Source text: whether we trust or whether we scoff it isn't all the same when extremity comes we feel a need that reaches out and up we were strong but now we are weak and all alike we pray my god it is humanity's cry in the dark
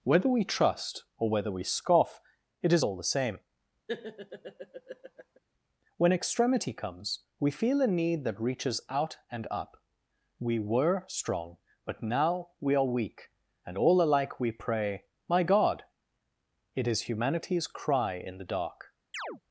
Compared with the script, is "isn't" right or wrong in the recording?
wrong